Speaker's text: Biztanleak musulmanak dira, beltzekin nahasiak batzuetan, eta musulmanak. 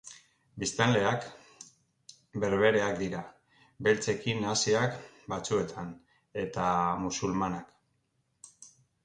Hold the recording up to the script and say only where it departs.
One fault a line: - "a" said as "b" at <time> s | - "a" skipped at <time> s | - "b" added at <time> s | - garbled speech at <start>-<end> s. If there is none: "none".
- "musulmanak" said as "berbereak" at 2.4 s